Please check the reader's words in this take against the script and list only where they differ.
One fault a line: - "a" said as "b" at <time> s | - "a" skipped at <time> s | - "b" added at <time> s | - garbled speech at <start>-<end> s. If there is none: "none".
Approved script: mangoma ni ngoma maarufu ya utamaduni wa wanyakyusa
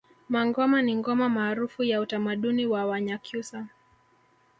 none